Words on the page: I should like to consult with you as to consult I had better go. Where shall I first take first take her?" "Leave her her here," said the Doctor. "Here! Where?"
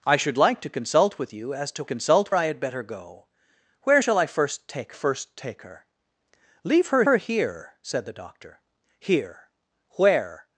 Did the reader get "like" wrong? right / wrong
right